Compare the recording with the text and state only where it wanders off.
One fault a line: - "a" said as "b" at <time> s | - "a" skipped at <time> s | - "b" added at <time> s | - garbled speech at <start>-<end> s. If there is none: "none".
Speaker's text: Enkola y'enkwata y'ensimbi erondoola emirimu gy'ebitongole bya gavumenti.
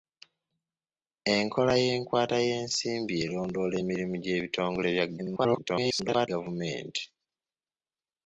- garbled speech at 5.2-6.3 s